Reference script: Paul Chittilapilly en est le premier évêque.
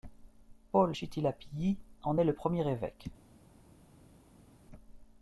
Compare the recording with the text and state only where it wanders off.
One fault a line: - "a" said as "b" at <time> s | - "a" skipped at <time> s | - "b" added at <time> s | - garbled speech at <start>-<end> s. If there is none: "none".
none